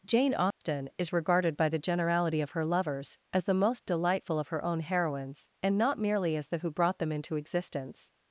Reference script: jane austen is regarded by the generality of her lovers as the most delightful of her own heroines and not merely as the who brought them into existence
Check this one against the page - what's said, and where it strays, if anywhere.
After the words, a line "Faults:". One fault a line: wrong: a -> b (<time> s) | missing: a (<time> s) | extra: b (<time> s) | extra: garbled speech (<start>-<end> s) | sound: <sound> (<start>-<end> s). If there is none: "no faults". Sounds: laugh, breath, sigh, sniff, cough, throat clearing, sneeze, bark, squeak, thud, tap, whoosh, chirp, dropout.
jane austen is regarded by the generality of her lovers as the most delightful of her own heroines and not merely as the who brought them into existence
Faults:
sound: dropout (0.5-0.6 s)